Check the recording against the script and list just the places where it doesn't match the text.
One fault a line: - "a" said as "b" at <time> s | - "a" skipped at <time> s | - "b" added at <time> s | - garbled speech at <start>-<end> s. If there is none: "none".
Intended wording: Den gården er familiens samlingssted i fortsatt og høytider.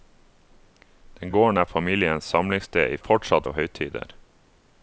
none